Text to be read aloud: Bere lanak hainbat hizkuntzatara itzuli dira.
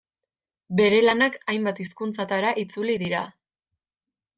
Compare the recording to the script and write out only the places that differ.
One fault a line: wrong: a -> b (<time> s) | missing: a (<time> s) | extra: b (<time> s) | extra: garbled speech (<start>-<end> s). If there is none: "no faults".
no faults